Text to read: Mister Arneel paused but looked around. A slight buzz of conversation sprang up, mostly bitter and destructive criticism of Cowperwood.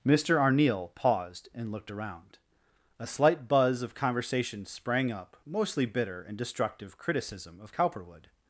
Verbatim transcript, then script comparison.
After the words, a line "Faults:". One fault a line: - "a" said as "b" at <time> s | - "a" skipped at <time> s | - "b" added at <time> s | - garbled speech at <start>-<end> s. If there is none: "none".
Mister Arneel paused and looked around. A slight buzz of conversation sprang up, mostly bitter and destructive criticism of Cowperwood.
Faults:
- "but" said as "and" at 1.5 s